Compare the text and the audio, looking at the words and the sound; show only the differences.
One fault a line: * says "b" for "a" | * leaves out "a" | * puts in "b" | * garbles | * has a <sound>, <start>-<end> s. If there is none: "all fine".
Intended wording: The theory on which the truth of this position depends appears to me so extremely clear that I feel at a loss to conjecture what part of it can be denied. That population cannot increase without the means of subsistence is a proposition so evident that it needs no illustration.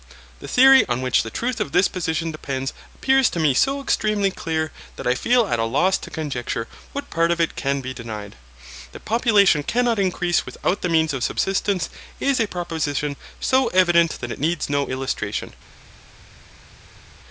all fine